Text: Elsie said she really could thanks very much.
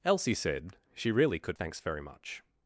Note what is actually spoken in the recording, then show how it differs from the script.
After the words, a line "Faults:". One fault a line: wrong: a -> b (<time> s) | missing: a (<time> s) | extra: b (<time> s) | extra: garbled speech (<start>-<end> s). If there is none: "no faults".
Elsie said she really could thanks very much.
Faults:
no faults